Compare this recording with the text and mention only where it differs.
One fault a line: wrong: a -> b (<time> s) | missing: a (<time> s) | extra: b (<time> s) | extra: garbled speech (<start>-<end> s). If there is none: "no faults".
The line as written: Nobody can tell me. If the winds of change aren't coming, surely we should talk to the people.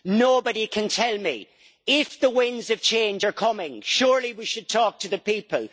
wrong: aren't -> are (3.2 s)